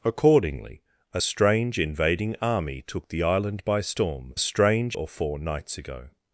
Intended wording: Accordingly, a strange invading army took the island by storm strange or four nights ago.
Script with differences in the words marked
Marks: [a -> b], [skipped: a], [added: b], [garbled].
Accordingly, a strange invading army took the island by storm strange or four nights ago.